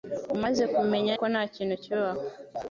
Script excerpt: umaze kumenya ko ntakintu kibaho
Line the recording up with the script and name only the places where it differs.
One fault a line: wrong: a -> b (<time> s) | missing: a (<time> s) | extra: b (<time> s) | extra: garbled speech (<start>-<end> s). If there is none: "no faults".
no faults